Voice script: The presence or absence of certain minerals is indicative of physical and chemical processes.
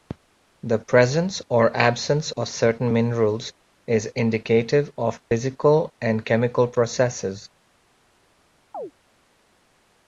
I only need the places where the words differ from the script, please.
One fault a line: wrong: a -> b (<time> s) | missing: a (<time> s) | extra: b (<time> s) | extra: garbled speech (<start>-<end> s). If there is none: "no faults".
no faults